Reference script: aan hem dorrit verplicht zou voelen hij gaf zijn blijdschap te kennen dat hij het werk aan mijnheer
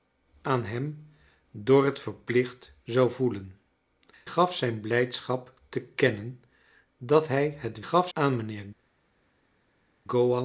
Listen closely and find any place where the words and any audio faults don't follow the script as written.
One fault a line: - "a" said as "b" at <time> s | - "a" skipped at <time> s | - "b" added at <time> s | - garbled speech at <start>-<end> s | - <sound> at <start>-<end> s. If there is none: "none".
- "hij" skipped at 3.6 s
- "werk" said as "gaf" at 7.8 s